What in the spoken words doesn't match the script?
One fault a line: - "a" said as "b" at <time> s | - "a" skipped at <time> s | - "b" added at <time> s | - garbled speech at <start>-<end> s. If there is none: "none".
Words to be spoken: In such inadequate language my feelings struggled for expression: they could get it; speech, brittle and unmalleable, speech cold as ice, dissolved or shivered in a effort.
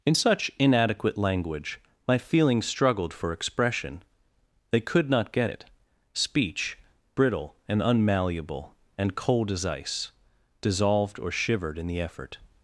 - "not" added at 5.1 s
- "speech" said as "and" at 9.0 s
- "a" said as "the" at 11.9 s